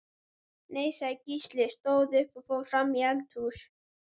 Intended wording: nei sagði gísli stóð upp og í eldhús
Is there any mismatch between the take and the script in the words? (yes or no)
yes